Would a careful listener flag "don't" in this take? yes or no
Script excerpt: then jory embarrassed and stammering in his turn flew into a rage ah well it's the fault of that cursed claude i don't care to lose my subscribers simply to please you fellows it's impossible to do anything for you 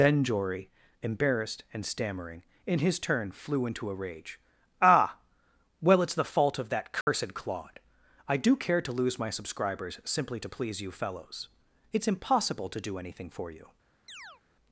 yes